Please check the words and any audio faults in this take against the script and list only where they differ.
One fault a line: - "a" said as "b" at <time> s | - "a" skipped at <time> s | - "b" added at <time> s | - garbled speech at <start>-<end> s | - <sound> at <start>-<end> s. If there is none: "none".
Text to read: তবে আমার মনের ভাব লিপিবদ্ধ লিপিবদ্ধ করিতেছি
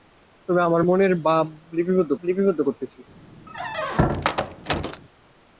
- squeak at 3.5-5.0 s